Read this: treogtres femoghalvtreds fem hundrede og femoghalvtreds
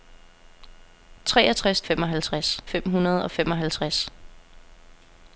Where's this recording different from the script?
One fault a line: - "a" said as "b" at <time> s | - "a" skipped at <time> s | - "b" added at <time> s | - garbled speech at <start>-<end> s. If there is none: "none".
none